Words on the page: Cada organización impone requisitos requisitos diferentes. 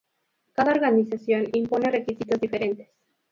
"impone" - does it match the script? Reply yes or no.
yes